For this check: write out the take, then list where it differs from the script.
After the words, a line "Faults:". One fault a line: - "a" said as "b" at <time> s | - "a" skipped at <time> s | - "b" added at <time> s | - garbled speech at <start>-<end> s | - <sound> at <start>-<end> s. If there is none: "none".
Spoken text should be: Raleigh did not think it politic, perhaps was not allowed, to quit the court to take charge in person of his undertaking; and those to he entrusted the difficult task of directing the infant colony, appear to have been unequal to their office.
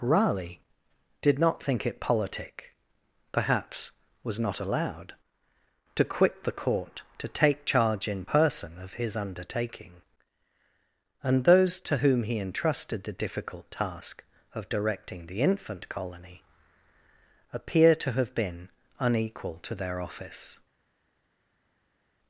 Raleigh did not think it politic, perhaps was not allowed, to quit the court to take charge in person of his undertaking; and those to whom he entrusted the difficult task of directing the infant colony, appear to have been unequal to their office.
Faults:
- "whom" added at 12.0 s